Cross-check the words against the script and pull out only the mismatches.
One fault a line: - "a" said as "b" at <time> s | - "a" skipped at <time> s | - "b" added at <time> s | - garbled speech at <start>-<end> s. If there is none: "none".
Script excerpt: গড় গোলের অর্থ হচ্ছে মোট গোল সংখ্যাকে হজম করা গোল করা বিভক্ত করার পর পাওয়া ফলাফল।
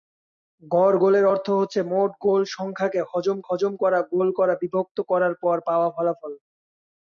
- "হজম" added at 3.5 s